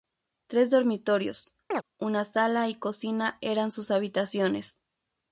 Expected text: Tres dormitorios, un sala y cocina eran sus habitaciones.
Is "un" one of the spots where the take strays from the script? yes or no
yes